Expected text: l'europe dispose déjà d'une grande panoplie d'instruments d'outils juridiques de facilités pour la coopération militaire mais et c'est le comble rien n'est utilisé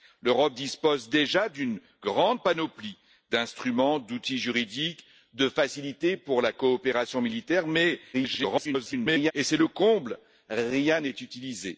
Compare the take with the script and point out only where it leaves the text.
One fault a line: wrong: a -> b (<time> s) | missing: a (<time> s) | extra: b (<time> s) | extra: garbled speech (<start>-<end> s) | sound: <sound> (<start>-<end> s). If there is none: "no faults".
extra: garbled speech (8.1-9.3 s)